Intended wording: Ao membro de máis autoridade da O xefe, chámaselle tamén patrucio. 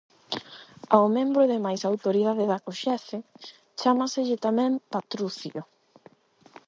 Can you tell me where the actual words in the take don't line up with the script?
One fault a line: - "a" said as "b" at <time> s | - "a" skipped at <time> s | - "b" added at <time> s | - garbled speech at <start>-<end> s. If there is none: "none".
none